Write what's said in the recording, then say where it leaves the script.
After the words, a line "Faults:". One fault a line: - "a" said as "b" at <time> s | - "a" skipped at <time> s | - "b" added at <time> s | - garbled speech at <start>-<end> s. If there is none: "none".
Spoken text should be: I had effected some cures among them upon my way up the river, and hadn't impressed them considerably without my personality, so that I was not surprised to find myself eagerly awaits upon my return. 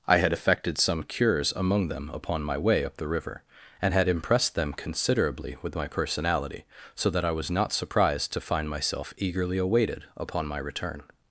I had effected some cures among them upon my way up the river, and had impressed them considerably with my personality, so that I was not surprised to find myself eagerly awaited upon my return.
Faults:
- "hadn't" said as "had" at 3.9 s
- "without" said as "with" at 5.6 s
- "awaits" said as "awaited" at 9.6 s